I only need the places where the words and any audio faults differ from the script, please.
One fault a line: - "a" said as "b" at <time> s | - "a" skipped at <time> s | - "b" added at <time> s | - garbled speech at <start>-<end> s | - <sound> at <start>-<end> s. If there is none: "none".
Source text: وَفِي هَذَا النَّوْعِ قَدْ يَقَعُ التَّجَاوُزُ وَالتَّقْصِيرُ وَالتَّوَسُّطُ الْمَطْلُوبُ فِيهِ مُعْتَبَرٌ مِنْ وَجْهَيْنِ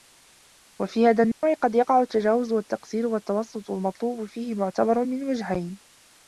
- dropout at 1.3-1.4 s